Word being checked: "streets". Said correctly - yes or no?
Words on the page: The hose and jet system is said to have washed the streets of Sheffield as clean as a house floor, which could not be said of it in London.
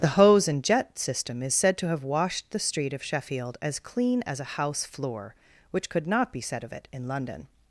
no